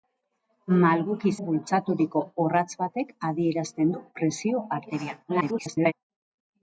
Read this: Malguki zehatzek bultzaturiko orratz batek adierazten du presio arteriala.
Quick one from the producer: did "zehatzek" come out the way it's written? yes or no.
no